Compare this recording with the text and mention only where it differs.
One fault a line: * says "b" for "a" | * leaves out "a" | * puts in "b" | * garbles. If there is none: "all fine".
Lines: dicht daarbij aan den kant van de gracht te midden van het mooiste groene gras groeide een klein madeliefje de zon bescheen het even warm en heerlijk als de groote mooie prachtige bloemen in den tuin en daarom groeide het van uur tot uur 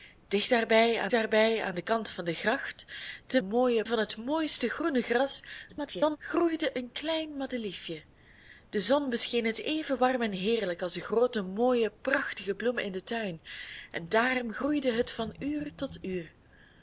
* puts in "daarbij aan"
* says "mooie" for "midden"
* garbles